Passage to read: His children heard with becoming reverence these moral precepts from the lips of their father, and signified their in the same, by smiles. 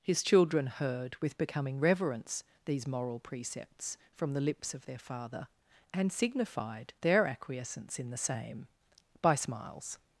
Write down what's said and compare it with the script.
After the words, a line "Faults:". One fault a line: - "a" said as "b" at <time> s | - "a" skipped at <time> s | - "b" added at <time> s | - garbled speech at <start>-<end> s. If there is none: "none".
His children heard with becoming reverence these moral precepts from the lips of their father, and signified their acquiescence in the same, by smiles.
Faults:
- "acquiescence" added at 7.3 s